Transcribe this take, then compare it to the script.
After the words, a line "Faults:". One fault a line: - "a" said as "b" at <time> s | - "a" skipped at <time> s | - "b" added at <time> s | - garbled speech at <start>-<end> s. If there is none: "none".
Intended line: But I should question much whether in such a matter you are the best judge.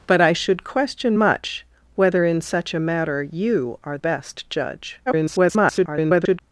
But I should question much whether in such a matter you are best judge. [garbled]
Faults:
- "the" skipped at 4.0 s
- garbled speech at 5.1-6.4 s